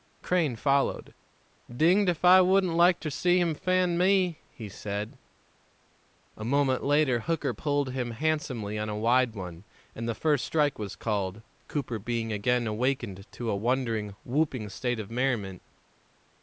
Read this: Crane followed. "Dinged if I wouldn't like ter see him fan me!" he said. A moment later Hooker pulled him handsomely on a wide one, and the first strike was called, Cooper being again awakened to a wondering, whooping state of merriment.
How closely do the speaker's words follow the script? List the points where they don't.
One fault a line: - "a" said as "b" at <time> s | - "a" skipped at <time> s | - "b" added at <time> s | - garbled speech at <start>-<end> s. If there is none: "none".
none